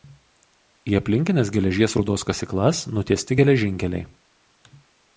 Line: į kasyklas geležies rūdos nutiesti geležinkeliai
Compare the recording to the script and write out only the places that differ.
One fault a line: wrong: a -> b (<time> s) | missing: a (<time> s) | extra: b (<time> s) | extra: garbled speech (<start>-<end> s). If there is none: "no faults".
wrong: kasyklas -> aplinkines (1.0 s)
extra: kasyklas (2.3 s)